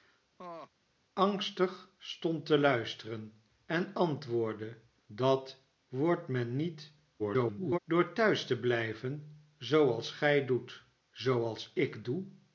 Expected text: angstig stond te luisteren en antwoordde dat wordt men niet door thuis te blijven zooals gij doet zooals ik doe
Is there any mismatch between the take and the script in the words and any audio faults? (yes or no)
yes